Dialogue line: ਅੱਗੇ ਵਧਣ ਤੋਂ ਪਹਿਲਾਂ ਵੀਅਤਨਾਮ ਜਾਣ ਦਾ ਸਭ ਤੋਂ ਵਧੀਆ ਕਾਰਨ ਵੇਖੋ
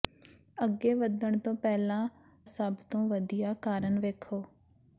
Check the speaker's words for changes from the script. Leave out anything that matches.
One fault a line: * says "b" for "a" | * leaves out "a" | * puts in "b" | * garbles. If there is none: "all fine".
* leaves out "ਵੀਅਤਨਾਮ ਜਾਣ ਦਾ"